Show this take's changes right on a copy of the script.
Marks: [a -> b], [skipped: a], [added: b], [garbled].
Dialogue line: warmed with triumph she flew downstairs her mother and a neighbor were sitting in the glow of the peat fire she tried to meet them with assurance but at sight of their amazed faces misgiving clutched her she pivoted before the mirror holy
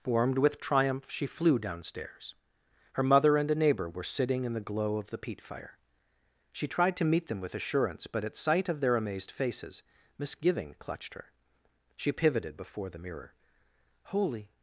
warmed with triumph she flew downstairs her mother and a neighbor were sitting in the glow of the peat fire she tried to meet them with assurance but at sight of their amazed faces misgiving clutched her she pivoted before the mirror holy